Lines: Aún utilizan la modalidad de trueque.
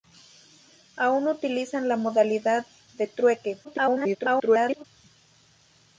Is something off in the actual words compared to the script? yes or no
yes